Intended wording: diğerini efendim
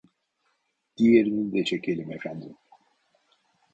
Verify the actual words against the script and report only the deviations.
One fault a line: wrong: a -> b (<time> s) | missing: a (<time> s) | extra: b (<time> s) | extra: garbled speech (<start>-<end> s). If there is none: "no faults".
extra: de çekelim (1.5 s)